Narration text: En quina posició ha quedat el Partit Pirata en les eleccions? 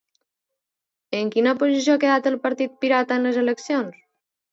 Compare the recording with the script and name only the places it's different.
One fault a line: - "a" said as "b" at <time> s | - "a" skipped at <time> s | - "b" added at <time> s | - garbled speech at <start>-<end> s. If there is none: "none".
none